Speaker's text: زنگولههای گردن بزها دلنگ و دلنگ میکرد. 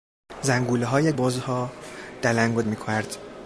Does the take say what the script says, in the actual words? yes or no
no